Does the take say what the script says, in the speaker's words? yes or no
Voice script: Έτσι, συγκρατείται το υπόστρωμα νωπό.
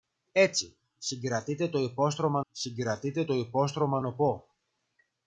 no